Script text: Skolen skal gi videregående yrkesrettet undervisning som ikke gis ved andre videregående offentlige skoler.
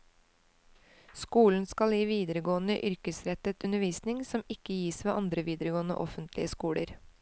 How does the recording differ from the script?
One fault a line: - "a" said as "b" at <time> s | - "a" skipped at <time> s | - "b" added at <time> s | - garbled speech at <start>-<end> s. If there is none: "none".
none